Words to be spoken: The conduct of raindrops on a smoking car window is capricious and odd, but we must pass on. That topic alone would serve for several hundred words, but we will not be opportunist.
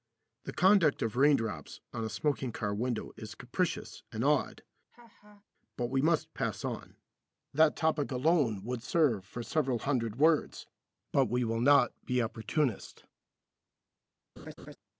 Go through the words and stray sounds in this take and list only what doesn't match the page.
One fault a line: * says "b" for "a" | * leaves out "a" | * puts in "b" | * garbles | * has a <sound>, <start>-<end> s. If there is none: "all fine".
* has a laugh, 4.9-5.4 s
* has a laugh, 14.4-14.8 s